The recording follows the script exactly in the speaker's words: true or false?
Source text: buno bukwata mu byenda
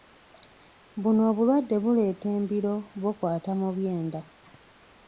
false